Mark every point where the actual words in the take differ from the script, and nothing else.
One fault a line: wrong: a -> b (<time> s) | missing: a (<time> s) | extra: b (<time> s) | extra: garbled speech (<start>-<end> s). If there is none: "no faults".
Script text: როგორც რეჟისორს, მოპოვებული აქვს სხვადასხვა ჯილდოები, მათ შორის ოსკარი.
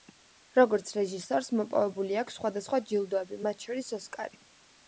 no faults